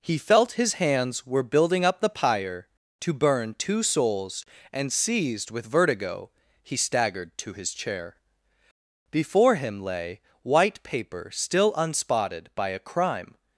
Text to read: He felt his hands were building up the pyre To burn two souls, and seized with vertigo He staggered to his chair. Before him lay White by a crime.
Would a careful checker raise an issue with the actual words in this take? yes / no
yes